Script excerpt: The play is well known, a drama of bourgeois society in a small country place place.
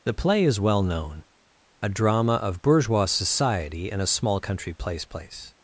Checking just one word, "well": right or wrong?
right